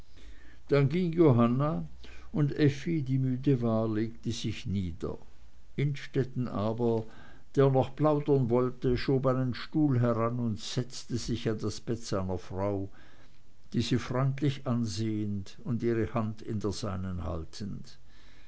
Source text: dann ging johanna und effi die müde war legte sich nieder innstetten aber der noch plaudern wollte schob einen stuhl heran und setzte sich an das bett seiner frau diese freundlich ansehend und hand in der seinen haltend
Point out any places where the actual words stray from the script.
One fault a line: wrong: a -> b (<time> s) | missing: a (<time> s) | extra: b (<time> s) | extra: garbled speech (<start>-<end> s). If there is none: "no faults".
extra: ihre (15.8 s)